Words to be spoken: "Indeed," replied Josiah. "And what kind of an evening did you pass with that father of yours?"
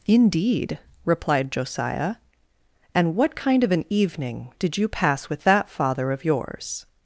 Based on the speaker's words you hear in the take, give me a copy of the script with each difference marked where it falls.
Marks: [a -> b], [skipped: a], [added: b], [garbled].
"Indeed," replied Josiah. "And what kind of an evening did you pass with that father of yours?"